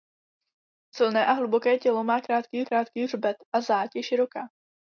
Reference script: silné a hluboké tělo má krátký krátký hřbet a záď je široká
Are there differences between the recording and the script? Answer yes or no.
no